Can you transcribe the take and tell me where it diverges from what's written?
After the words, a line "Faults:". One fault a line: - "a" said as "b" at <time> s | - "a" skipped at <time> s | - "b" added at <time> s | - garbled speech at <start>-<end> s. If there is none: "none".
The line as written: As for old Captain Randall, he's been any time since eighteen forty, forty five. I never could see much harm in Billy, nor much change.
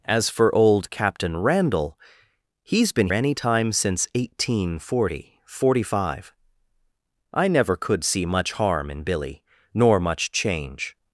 As for old Captain Randall, he's been any time since eighteen forty, forty five. I never could see much harm in Billy, nor much change.
Faults:
none